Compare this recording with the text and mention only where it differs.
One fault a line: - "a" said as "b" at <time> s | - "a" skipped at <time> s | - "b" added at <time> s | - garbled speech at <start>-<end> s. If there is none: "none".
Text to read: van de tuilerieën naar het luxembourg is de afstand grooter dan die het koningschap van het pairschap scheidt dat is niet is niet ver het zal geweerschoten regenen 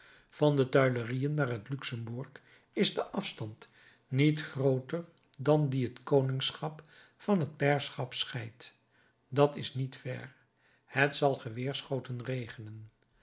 - "niet" added at 4.1 s
- "is niet" skipped at 9.9 s